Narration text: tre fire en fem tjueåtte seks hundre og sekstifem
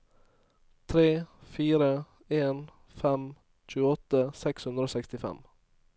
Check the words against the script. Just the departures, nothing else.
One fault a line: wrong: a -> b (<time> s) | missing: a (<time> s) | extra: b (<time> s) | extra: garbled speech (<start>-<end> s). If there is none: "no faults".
no faults